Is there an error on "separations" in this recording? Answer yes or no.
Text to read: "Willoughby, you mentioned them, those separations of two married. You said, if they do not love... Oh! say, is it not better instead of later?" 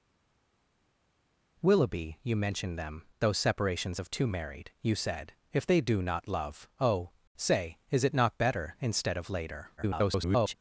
no